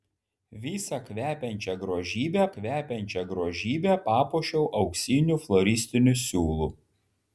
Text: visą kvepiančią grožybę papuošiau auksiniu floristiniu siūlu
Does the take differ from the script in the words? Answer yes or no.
yes